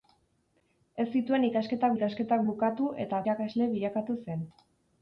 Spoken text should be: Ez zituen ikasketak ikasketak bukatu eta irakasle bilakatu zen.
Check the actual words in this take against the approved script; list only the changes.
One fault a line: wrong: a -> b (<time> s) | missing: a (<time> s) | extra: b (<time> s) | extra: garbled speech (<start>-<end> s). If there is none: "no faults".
no faults